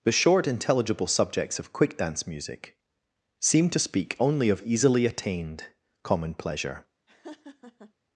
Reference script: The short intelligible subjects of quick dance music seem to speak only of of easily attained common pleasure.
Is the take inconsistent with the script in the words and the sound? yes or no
yes